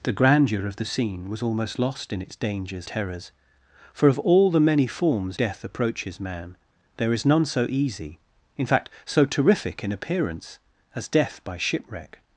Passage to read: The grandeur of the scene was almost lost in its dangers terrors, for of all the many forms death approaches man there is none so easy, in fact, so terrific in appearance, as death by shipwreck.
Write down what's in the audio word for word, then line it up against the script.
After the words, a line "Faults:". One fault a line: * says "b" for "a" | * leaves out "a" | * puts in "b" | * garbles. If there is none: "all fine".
The grandeur of the scene was almost lost in its dangers terrors, for of all the many forms death approaches man there is none so easy, in fact, so terrific in appearance, as death by shipwreck.
Faults:
all fine